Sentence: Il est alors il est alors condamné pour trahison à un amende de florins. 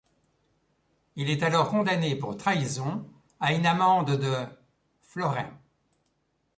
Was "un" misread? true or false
true